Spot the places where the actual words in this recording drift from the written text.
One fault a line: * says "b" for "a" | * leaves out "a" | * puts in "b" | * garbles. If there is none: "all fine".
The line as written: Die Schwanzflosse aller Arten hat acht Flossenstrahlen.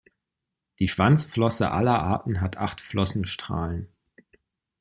all fine